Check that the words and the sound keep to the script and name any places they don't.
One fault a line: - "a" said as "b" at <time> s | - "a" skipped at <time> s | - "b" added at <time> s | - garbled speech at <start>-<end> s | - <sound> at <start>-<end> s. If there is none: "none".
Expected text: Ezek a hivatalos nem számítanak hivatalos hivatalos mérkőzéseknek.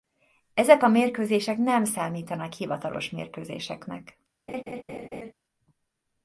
- "hivatalos" said as "mérkőzések" at 0.9 s
- "hivatalos" skipped at 3.1 s
- laugh at 4.5-5.3 s